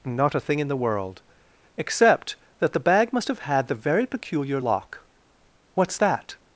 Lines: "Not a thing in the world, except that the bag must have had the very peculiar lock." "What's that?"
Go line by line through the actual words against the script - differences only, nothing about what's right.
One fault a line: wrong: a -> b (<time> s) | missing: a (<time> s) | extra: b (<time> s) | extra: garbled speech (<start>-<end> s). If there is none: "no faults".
no faults